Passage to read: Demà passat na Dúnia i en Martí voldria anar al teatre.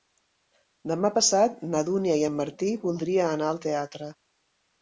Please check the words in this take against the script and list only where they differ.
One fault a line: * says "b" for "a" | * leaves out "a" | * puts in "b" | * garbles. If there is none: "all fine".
all fine